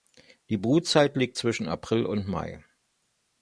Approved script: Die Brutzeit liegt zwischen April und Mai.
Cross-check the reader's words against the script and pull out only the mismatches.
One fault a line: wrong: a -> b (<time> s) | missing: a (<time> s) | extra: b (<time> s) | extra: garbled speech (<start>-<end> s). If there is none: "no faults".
no faults